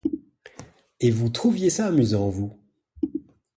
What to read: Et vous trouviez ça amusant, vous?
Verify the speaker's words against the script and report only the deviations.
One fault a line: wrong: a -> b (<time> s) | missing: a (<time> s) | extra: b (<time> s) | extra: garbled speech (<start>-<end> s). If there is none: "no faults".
no faults